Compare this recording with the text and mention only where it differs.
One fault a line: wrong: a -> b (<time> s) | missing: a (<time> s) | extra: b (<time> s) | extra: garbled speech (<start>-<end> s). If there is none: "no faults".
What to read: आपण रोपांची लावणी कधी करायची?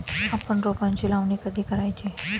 no faults